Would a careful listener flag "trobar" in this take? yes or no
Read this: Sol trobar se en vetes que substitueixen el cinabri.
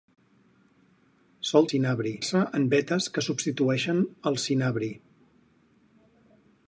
yes